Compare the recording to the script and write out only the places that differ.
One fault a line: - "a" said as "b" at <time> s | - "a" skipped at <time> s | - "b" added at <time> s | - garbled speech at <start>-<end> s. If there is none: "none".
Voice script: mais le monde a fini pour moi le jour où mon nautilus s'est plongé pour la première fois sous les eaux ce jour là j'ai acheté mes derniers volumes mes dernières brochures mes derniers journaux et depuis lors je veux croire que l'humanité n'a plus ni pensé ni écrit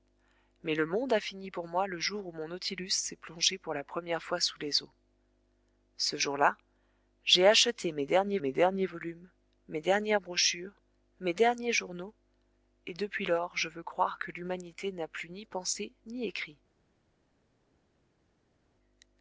- "mes derniers" added at 8.4 s